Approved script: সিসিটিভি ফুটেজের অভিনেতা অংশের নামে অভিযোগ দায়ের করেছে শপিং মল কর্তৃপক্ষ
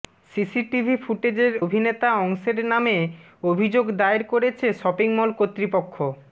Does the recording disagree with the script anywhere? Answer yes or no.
no